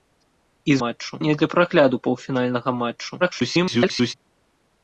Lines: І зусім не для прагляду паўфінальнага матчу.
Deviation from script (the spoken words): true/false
true